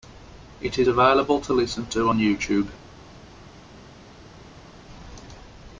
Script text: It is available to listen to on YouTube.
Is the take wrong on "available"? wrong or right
right